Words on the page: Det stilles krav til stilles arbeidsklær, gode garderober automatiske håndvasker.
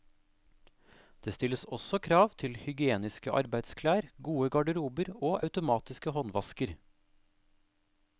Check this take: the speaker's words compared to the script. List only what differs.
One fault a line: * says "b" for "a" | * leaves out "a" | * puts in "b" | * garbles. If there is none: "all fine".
* puts in "også"
* says "hygieniske" for "stilles"
* puts in "og"